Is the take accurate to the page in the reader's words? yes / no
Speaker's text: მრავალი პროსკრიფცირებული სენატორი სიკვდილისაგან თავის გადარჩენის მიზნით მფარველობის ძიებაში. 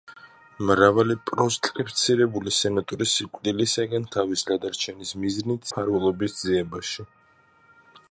yes